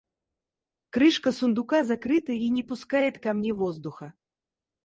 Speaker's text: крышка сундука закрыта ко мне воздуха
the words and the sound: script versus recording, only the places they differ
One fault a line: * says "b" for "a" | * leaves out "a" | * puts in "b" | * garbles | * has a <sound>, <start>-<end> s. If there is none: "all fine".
* puts in "и не пускает"